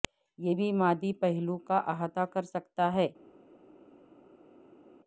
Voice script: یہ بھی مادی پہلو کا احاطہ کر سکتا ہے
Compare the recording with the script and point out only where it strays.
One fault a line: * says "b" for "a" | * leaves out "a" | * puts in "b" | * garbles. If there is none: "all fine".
all fine